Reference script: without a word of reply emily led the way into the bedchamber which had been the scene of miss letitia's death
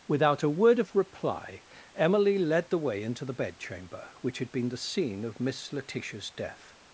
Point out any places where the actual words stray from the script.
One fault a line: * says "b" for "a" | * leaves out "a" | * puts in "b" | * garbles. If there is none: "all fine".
all fine